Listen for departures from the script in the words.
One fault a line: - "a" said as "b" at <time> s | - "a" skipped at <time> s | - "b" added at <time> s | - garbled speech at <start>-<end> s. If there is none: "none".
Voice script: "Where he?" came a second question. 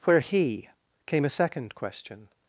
none